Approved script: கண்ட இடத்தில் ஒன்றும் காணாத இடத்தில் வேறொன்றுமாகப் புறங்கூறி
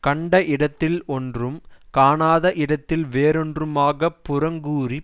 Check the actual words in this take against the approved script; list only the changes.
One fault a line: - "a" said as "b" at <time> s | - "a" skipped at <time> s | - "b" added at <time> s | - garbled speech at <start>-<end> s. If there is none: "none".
none